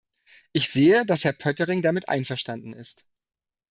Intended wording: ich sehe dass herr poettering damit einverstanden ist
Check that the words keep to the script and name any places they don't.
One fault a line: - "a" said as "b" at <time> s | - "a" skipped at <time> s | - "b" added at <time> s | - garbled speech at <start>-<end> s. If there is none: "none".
none